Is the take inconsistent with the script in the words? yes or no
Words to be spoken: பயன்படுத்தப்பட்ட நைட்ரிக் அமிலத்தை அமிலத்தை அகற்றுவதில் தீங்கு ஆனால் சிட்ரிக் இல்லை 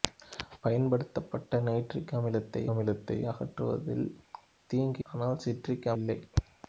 no